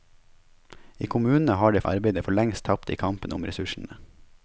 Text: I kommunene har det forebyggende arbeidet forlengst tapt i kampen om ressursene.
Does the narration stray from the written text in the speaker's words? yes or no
yes